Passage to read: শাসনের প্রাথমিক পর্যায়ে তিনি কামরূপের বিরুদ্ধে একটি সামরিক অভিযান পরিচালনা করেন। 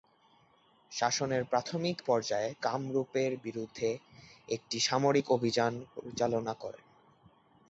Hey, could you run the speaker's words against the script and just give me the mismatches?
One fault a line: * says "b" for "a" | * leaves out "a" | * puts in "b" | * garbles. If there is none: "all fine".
* leaves out "তিনি"